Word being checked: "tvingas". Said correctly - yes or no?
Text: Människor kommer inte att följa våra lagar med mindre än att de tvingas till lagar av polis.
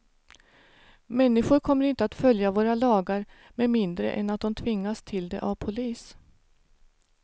yes